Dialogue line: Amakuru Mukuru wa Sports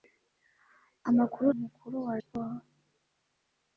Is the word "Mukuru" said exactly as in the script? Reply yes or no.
yes